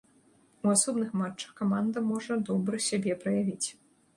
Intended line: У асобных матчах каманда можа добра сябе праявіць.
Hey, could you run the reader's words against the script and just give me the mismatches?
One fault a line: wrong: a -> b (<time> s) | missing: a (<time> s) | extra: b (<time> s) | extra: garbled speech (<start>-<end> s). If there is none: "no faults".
no faults